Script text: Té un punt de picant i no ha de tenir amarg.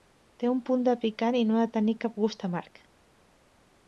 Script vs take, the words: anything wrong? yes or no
yes